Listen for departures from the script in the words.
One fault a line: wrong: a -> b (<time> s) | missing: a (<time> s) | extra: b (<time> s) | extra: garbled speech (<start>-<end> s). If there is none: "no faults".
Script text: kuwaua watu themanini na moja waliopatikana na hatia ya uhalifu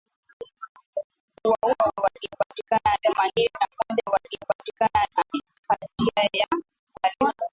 wrong: watu -> waliopatikana (2.0 s)